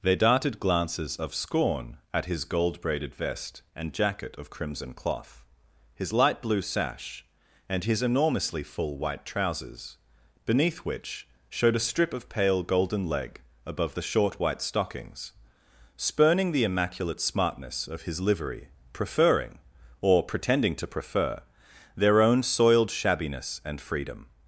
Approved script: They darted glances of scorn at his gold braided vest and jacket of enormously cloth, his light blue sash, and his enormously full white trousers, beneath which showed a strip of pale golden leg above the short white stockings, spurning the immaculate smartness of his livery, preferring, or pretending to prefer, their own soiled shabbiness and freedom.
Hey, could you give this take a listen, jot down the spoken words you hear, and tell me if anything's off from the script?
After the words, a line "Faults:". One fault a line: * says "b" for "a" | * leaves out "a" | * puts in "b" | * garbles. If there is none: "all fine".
They darted glances of scorn at his gold braided vest and jacket of crimson cloth, his light blue sash, and his enormously full white trousers, beneath which showed a strip of pale golden leg above the short white stockings, spurning the immaculate smartness of his livery, preferring, or pretending to prefer, their own soiled shabbiness and freedom.
Faults:
* says "crimson" for "enormously"